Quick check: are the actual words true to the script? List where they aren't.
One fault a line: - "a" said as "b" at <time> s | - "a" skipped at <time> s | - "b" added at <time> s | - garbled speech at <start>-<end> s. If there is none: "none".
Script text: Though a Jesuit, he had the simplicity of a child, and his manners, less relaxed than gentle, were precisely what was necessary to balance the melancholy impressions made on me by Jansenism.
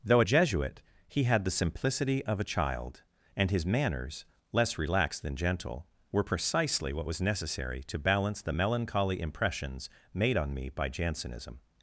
none